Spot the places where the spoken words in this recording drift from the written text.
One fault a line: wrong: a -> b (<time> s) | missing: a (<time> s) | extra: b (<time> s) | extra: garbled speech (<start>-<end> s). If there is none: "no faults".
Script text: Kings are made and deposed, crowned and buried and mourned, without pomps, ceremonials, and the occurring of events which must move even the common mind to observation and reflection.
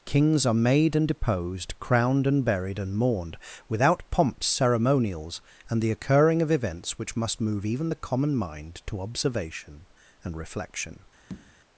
no faults